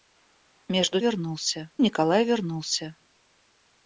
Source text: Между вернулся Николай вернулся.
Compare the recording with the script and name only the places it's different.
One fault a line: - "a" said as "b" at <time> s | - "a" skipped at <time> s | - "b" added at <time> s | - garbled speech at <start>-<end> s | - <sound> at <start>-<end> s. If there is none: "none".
none